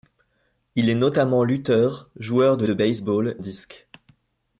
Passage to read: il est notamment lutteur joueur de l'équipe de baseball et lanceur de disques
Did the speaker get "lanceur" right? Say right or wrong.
wrong